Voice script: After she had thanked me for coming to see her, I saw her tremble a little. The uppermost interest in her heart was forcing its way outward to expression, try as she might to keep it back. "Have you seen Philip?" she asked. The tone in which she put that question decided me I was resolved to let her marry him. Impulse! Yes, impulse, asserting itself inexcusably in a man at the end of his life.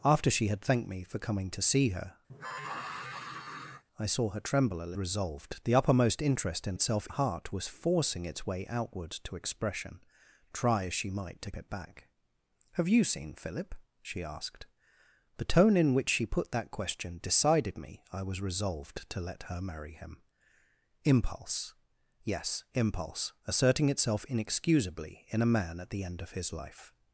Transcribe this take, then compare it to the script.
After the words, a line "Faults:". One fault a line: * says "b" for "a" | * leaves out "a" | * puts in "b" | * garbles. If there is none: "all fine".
After she had thanked me for coming to see her, I saw her tremble a resolved. The uppermost interest in itself heart was forcing its way outward to expression, try as she might to it back. "Have you seen Philip?" she asked. The tone in which she put that question decided me I was resolved to let her marry him. Impulse! Yes, impulse, asserting itself inexcusably in a man at the end of his life.
Faults:
* says "resolved" for "little"
* says "itself" for "her"
* leaves out "keep"